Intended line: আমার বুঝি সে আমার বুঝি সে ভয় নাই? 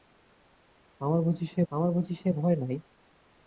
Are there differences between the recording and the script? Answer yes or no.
no